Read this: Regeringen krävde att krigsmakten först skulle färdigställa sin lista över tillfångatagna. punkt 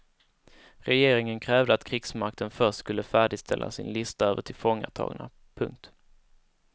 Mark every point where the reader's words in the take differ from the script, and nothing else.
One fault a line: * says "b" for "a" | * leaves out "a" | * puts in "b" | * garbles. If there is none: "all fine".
all fine